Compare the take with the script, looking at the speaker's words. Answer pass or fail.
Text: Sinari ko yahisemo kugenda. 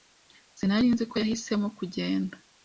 fail